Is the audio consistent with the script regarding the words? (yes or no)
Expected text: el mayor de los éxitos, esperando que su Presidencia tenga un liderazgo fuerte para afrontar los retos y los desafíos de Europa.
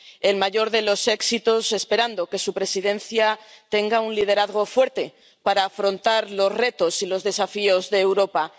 yes